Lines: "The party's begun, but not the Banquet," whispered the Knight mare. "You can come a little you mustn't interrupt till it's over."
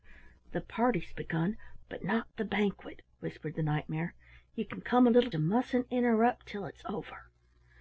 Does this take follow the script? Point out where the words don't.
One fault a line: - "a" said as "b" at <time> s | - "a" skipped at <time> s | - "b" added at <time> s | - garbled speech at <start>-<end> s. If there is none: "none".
none